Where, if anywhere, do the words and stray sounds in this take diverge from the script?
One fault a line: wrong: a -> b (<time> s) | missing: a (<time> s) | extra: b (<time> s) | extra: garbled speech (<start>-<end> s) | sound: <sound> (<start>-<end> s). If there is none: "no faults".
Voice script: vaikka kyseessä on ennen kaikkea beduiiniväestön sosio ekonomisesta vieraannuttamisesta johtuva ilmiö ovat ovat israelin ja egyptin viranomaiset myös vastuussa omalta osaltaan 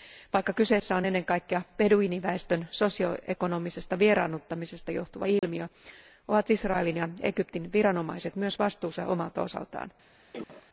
sound: dropout (5.4-5.4 s)
missing: ovat (6.5 s)
sound: cough (10.3-10.7 s)